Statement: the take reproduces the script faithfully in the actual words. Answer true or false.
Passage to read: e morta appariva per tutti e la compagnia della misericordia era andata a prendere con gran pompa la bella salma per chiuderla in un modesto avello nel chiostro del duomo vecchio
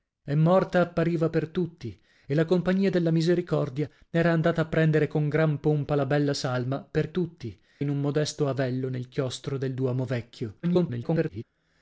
false